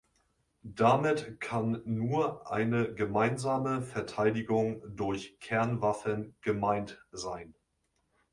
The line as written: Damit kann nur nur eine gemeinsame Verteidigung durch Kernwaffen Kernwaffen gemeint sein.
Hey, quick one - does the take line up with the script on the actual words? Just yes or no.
no